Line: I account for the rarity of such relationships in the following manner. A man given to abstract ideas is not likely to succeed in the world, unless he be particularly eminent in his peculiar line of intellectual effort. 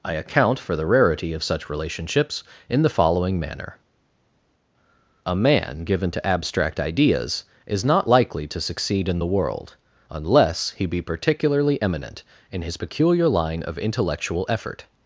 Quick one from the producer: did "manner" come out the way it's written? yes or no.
yes